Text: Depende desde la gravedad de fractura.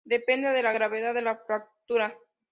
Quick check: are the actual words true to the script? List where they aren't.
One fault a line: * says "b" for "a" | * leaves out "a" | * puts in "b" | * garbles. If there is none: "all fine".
* says "de" for "desde"
* puts in "la"